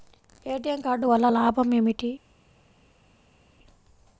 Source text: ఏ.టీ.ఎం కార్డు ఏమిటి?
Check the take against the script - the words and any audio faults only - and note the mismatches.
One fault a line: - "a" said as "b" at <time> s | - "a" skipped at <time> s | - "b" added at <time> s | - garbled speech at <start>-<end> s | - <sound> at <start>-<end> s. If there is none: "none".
- "వల్ల లాభం" added at 1.0 s